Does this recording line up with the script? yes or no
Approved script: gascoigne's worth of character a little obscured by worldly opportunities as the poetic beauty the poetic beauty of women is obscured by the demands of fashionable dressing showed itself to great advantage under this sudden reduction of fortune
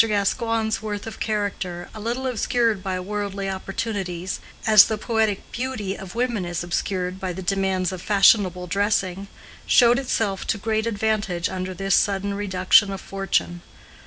no